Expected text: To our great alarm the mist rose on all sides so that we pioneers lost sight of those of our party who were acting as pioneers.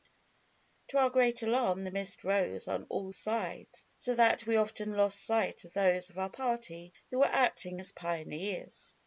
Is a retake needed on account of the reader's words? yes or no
yes